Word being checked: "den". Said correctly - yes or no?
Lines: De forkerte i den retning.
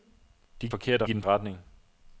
yes